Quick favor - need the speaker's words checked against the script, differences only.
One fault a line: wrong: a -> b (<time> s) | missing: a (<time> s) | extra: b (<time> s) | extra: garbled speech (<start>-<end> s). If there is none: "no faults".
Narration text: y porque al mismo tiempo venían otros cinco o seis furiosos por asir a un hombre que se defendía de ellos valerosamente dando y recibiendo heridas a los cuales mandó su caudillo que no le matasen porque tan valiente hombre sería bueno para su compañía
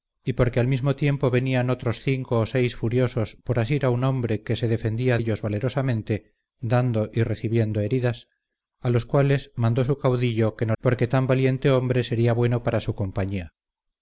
missing: de (5.2 s)
missing: le matasen (10.8 s)